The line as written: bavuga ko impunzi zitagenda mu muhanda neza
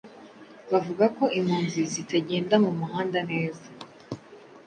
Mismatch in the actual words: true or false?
false